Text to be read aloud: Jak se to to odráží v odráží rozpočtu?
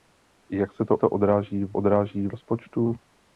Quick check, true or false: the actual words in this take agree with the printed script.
true